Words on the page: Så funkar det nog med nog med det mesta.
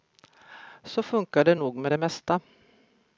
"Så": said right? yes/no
yes